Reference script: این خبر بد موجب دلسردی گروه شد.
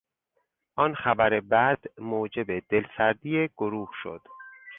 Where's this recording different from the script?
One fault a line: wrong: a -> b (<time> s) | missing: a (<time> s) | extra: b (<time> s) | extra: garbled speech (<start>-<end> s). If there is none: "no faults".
wrong: این -> آن (0.8 s)